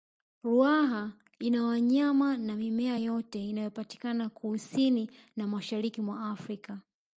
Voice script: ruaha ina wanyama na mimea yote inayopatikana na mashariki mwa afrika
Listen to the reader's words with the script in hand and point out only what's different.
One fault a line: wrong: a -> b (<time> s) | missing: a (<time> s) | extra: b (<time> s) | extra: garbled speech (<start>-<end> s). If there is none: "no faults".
extra: kusini (4.3 s)